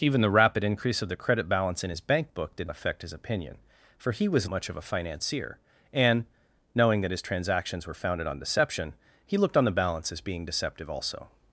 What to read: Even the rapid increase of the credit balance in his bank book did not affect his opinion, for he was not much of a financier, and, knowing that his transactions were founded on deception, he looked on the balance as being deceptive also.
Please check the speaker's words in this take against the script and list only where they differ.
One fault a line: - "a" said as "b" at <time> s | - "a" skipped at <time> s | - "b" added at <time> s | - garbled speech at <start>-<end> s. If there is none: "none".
- "not" skipped at 2.7 s
- "not" skipped at 4.5 s